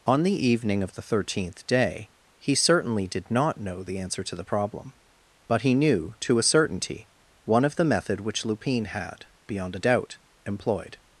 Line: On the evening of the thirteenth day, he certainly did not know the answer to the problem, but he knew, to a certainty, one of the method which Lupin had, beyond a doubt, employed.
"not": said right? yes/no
yes